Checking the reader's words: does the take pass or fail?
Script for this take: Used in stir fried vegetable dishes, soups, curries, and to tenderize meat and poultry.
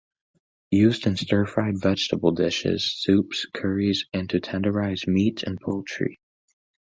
pass